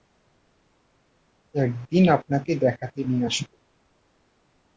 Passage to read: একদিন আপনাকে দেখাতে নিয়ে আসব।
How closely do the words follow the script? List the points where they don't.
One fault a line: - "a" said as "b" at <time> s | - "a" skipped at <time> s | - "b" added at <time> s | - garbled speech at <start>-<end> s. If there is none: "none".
none